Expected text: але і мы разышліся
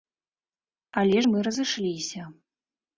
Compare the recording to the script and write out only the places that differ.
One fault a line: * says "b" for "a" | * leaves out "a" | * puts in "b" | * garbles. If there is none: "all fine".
all fine